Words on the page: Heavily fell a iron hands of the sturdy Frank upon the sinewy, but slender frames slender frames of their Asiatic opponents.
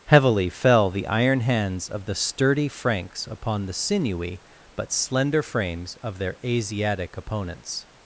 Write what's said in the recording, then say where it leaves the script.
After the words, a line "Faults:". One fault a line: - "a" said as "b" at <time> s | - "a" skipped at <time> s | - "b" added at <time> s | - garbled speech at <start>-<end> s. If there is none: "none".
Heavily fell the iron hands of the sturdy Franks upon the sinewy, but slender frames of their Asiatic opponents.
Faults:
- "a" said as "the" at 0.9 s
- "Frank" said as "Franks" at 2.7 s
- "slender frames" skipped at 6.0 s